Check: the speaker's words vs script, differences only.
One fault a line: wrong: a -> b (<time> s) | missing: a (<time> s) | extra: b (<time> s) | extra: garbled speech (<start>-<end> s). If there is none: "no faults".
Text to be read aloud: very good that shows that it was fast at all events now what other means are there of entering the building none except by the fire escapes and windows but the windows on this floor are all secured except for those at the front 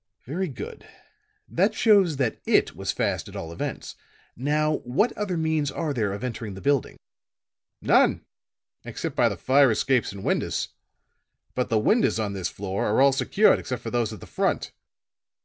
no faults